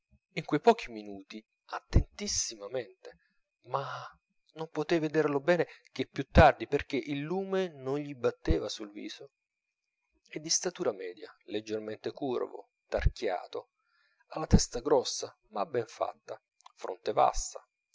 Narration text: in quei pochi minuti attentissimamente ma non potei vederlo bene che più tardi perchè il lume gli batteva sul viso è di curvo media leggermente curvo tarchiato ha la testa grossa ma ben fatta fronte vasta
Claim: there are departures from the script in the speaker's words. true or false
true